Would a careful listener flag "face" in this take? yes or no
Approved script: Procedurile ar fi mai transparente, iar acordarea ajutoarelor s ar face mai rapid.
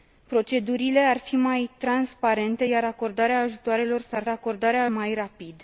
yes